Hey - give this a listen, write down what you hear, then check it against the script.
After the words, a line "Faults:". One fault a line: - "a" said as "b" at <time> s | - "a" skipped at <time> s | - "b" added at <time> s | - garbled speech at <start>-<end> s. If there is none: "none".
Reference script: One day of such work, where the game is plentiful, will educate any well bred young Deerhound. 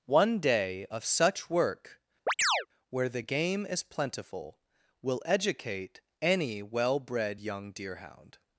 One day of such work, where the game is plentiful, will educate any well bred young Deerhound.
Faults:
none